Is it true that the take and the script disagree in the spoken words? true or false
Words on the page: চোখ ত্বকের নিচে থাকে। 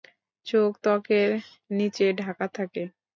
true